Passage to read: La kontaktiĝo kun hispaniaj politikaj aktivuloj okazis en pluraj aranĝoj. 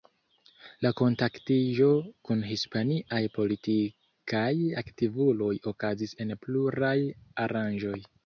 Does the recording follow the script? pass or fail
pass